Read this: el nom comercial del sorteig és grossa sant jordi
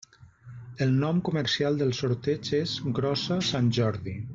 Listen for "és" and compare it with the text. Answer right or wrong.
right